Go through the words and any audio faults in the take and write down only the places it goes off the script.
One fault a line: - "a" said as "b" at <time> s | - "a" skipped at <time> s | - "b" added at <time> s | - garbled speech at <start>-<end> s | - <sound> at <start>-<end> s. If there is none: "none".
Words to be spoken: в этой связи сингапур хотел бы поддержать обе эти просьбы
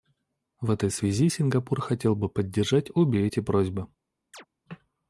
- chirp at 4.3-4.5 s